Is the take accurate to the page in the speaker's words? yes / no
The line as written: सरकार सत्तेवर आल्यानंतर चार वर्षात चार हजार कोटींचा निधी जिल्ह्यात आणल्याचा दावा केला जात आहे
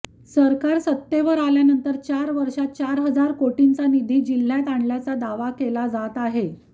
yes